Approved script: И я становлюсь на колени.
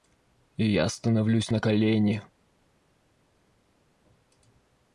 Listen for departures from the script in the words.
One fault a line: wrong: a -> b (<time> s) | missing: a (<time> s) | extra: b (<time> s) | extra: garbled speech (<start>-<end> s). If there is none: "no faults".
no faults